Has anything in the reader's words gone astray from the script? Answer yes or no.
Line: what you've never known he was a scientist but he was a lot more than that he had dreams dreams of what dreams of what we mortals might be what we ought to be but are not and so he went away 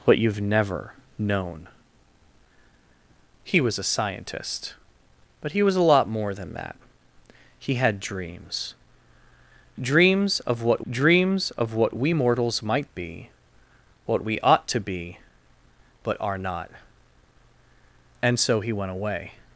no